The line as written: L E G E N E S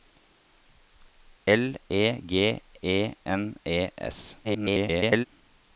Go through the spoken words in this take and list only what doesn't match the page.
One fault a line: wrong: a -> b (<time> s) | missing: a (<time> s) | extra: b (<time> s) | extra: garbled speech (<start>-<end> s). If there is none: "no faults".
extra: garbled speech (4.4-5.3 s)